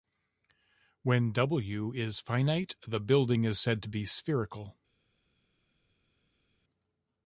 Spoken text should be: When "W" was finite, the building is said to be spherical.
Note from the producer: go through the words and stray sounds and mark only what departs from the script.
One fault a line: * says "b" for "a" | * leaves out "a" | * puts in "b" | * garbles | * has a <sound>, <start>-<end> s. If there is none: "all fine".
* says "is" for "was"